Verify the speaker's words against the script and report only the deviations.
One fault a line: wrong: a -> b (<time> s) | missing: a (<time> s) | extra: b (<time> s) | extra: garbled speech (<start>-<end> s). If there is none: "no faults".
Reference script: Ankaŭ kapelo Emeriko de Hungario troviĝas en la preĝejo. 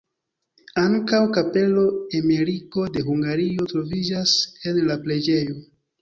no faults